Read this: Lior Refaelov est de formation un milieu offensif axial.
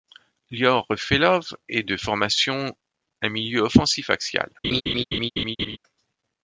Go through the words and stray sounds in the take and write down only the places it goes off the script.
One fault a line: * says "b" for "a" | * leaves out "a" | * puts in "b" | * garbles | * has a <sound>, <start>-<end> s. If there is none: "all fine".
* has a laugh, 4.6-5.8 s